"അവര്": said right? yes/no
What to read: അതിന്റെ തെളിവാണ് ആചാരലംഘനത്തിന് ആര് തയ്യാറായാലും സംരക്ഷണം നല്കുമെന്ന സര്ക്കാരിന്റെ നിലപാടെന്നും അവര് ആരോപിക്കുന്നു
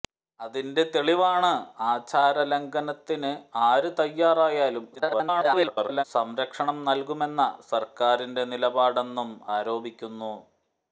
no